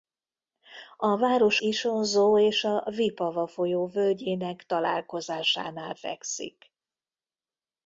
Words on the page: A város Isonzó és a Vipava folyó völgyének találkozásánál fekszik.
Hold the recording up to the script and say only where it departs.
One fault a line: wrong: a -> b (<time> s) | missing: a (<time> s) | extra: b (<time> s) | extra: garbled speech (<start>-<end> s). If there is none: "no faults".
no faults